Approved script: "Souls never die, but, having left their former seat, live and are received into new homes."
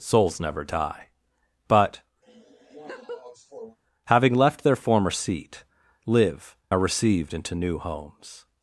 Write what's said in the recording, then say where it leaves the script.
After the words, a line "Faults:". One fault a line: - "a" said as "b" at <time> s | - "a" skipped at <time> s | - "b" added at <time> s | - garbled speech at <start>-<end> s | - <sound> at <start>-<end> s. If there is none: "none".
"Souls never die, but, having left their former seat, live are received into new homes."
Faults:
- laugh at 2.2-3.8 s
- "and" skipped at 6.5 s